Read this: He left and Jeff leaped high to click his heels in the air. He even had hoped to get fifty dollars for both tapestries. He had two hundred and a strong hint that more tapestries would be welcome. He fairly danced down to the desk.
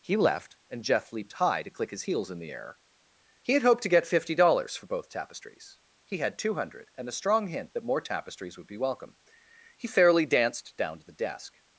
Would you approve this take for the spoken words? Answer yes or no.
no